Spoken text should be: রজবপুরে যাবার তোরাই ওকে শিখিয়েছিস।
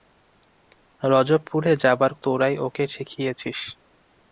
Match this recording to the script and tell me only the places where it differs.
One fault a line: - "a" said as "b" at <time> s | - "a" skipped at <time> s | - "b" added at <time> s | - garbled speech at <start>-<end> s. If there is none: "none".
none